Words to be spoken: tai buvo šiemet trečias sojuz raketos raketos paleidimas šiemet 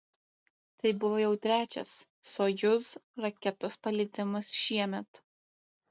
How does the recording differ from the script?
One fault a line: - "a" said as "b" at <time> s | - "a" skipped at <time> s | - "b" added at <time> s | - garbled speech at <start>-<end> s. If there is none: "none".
- "šiemet" said as "jau" at 1.2 s
- "raketos" skipped at 3.7 s